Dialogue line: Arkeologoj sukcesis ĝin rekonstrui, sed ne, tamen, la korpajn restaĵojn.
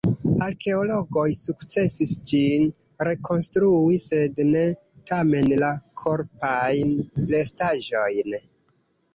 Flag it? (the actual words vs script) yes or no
no